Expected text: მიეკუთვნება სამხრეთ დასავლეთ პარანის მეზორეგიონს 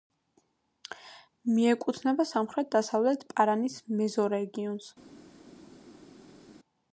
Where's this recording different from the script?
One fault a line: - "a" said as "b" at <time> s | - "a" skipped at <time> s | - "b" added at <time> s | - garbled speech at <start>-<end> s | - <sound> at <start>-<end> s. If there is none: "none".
none